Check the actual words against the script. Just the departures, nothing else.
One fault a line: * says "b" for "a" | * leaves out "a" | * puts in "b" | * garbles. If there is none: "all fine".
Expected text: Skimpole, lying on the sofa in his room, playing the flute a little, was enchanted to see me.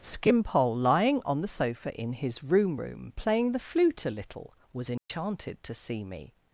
* puts in "room"